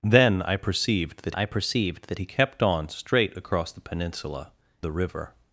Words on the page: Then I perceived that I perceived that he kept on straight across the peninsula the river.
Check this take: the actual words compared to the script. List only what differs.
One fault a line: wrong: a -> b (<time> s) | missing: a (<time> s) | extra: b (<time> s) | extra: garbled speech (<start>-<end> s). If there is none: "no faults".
no faults